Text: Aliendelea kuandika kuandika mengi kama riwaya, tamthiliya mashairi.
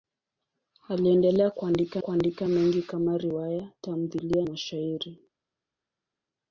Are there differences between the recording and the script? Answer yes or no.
no